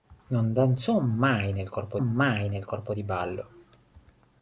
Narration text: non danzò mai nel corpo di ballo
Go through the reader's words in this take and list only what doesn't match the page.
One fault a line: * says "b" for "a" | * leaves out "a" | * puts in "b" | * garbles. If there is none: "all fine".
* puts in "mai nel corpo"